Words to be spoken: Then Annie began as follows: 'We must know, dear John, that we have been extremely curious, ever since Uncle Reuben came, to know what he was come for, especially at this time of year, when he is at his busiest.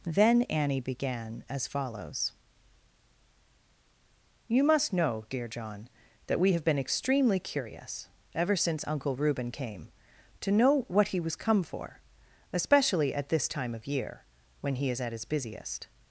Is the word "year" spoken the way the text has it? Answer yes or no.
yes